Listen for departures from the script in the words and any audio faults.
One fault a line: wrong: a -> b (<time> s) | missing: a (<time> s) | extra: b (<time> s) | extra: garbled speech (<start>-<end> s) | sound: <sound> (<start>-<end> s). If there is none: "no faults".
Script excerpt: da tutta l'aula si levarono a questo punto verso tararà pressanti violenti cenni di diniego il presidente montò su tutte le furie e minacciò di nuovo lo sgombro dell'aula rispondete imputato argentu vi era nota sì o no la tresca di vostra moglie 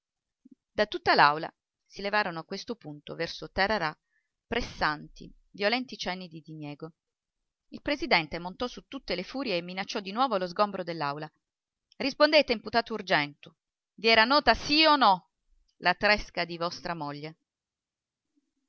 no faults